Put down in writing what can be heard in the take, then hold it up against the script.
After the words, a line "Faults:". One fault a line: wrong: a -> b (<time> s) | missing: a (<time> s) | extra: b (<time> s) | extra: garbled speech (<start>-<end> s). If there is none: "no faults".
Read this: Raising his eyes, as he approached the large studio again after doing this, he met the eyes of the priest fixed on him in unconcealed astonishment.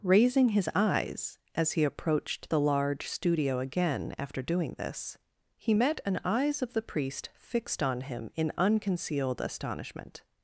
Raising his eyes, as he approached the large studio again after doing this, he met an eyes of the priest fixed on him in unconcealed astonishment.
Faults:
wrong: the -> an (6.0 s)